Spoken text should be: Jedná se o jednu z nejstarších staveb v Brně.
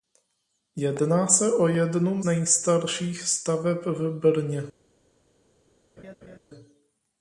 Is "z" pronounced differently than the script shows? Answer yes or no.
yes